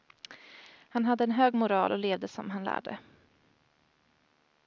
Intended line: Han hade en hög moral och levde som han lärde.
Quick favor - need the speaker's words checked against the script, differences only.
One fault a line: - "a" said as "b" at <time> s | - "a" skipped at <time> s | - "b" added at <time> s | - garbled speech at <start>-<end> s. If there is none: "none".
none